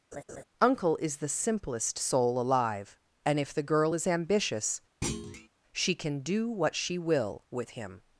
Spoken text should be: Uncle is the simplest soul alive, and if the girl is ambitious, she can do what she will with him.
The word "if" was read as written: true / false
true